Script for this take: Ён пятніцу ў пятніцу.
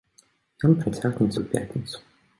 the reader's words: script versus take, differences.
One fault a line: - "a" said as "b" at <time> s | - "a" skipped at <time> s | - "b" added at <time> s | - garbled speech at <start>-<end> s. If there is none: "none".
- "пятніцу" said as "працягнецца" at 0.8 s